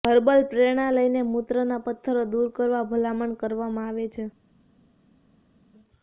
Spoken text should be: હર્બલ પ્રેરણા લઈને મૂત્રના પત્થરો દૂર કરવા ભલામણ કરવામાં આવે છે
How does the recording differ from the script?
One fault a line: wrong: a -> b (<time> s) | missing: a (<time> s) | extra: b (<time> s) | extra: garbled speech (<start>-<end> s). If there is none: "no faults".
no faults